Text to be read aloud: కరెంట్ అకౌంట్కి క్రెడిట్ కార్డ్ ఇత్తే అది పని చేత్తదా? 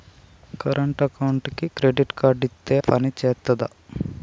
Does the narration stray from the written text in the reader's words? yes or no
yes